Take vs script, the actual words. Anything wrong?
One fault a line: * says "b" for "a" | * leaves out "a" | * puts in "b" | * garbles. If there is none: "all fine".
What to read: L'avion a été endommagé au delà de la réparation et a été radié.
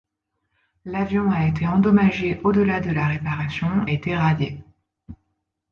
* leaves out "et"